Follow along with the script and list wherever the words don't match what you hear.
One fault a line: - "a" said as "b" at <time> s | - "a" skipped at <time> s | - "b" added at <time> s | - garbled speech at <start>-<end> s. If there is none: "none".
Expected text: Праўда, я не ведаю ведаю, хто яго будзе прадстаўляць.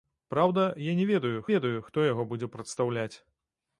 none